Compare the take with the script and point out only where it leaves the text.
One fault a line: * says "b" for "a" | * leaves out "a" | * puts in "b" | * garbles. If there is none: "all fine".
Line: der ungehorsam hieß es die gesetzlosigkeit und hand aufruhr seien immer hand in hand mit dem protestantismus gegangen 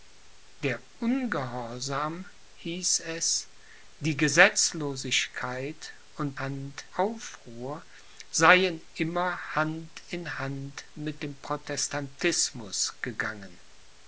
all fine